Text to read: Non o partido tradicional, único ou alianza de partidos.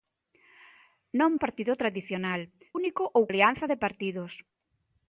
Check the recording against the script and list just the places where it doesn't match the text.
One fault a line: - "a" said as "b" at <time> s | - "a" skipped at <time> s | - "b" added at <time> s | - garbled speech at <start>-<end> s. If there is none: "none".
none